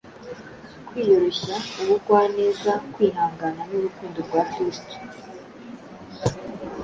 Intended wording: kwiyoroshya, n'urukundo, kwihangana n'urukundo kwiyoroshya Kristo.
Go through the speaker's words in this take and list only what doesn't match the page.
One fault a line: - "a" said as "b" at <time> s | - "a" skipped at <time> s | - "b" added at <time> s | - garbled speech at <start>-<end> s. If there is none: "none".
- "n'urukundo" said as "ubugwaneza" at 1.8 s
- "kwiyoroshya" said as "rwa" at 4.3 s